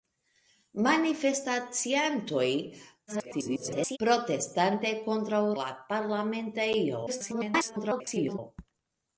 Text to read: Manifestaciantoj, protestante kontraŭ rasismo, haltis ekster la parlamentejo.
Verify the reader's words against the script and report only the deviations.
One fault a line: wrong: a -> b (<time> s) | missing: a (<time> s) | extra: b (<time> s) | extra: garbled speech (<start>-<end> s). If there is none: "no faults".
extra: garbled speech (3.1-4.0 s)
missing: rasismo haltis ekster (5.4 s)
extra: garbled speech (7.1-8.4 s)